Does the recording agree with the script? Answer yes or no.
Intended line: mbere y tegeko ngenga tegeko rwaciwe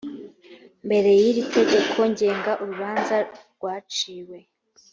no